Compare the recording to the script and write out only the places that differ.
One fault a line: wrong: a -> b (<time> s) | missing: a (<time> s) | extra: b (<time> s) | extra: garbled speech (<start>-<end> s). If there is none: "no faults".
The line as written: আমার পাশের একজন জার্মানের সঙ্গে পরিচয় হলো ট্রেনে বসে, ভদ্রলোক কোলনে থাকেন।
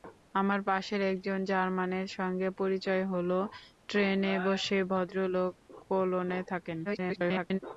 extra: garbled speech (6.8-7.6 s)